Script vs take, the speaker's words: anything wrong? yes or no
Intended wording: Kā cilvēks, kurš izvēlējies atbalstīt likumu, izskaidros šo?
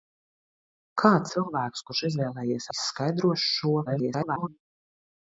yes